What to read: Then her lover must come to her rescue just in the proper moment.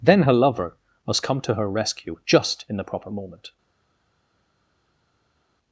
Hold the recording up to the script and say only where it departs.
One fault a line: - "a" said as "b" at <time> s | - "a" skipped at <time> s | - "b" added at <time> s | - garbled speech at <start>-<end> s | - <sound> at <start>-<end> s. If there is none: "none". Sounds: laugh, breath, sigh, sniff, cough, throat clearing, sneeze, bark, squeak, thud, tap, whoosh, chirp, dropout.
none